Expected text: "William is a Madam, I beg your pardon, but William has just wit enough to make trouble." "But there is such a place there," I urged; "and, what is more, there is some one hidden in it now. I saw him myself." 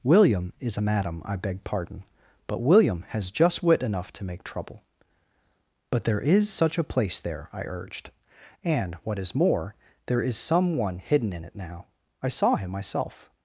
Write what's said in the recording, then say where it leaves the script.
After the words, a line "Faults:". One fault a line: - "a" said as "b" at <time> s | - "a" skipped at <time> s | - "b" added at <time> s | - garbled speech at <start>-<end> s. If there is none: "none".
"William is a Madam, I beg pardon, but William has just wit enough to make trouble." "But there is such a place there," I urged; "and, what is more, there is some one hidden in it now. I saw him myself."
Faults:
- "your" skipped at 1.6 s